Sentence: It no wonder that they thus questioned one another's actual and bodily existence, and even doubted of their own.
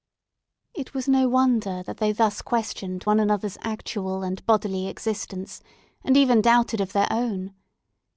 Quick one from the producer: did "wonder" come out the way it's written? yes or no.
yes